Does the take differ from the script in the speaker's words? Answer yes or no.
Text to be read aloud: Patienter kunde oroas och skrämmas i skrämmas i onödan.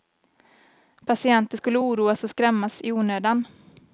yes